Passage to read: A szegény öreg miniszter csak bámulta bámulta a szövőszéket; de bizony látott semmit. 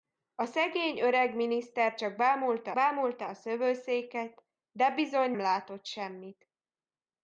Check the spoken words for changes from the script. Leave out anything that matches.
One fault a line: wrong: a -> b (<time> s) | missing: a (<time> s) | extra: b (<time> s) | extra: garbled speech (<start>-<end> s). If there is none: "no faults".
no faults